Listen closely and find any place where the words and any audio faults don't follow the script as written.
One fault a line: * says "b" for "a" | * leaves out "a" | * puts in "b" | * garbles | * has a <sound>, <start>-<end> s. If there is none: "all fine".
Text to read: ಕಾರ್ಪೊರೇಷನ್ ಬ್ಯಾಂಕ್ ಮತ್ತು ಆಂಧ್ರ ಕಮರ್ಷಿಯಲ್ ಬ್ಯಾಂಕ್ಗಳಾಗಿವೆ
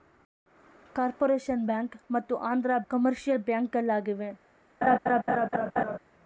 * has a laugh, 4.8-6.0 s